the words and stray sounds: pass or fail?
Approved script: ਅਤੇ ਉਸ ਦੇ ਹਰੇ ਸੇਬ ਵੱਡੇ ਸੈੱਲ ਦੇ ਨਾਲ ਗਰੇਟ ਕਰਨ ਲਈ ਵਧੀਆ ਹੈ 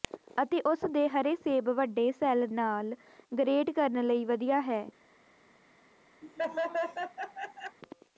fail